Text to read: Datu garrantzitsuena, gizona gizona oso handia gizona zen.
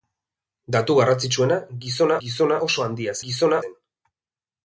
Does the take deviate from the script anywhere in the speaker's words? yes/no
no